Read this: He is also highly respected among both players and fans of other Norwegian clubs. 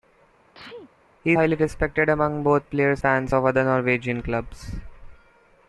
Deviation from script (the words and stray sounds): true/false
true